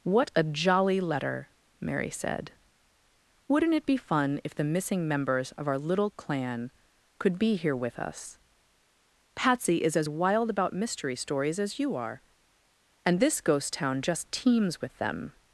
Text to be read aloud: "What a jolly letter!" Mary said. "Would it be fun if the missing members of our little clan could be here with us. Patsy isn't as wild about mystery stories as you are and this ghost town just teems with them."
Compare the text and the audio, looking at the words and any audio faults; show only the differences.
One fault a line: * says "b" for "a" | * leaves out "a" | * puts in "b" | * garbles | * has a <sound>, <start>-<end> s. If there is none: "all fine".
* says "Wouldn't" for "Would"
* says "is" for "isn't"